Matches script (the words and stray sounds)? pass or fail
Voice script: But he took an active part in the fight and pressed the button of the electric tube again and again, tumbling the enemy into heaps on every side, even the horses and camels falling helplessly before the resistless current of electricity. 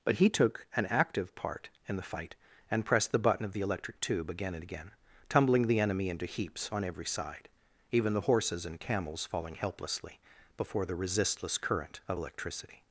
pass